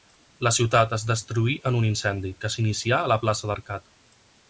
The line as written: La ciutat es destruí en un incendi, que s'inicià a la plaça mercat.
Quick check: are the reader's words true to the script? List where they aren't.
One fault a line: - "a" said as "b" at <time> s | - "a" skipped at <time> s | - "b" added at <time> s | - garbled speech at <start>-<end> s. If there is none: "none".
none